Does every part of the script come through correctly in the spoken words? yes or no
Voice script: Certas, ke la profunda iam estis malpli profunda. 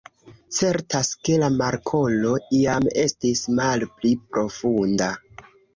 no